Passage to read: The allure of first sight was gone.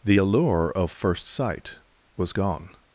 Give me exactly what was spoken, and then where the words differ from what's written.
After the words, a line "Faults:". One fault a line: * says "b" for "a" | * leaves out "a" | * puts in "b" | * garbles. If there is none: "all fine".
The allure of first sight was gone.
Faults:
all fine